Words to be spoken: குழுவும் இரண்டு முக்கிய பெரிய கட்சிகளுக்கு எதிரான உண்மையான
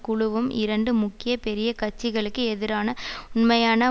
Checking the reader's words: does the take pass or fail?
pass